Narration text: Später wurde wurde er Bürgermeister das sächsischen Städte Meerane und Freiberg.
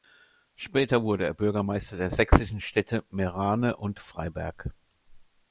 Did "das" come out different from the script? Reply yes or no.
yes